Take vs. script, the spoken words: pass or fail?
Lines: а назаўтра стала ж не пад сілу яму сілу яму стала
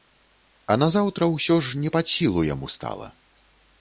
fail